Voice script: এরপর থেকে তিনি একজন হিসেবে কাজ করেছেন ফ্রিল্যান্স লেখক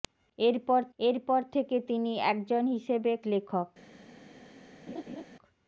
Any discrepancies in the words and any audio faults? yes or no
yes